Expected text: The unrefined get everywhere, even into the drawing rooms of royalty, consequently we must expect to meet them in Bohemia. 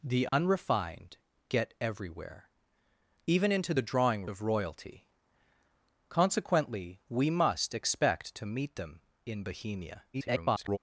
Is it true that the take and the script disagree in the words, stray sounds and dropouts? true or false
true